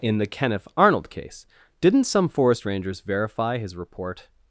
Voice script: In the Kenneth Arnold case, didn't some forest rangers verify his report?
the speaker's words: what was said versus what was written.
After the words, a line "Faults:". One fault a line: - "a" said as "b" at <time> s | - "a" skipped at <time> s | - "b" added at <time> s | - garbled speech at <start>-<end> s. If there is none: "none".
In the Kenneth Arnold case, didn't some forest rangers verify his report?
Faults:
none